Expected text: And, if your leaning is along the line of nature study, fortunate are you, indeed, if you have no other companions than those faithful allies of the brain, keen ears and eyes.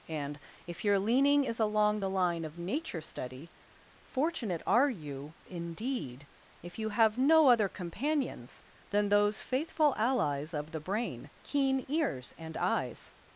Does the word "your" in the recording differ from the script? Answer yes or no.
no